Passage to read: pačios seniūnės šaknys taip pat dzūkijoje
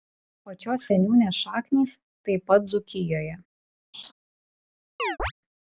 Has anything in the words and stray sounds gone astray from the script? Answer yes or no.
yes